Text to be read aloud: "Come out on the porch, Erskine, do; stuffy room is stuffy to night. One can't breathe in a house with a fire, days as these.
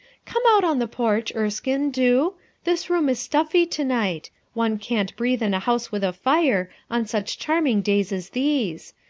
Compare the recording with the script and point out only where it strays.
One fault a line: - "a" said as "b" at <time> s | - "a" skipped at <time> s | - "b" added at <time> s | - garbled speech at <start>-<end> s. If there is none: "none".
- "stuffy" said as "this" at 2.6 s
- "on such charming" added at 6.9 s